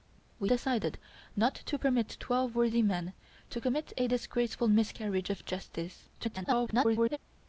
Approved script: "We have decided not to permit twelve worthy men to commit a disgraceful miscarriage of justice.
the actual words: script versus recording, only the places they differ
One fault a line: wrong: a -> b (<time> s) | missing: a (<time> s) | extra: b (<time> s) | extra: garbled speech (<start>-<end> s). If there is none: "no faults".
missing: have (0.5 s)
extra: garbled speech (6.1-7.2 s)